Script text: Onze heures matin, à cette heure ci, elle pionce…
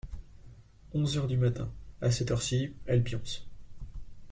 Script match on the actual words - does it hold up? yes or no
no